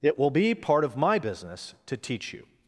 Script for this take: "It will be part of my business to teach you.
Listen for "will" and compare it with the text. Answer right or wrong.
right